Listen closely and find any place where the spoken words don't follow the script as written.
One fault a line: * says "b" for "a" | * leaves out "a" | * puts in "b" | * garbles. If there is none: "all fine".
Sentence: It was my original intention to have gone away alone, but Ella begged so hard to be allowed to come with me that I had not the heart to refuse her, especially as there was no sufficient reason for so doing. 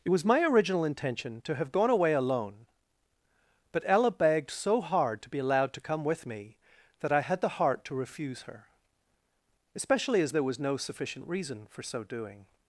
* leaves out "not"